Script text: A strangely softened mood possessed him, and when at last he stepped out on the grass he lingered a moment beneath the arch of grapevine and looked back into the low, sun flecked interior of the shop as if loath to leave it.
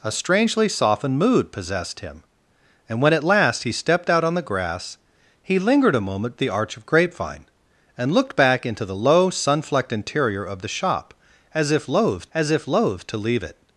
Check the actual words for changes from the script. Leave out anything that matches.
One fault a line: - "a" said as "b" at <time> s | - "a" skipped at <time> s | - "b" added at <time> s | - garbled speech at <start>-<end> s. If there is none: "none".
- "beneath" skipped at 6.3 s
- "as if loath" added at 12.3 s